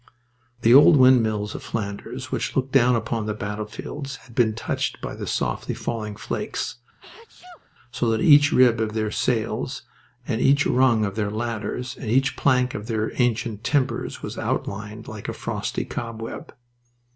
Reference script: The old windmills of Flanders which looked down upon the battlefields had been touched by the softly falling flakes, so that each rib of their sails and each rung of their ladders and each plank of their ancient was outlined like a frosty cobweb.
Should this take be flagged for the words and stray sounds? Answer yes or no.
yes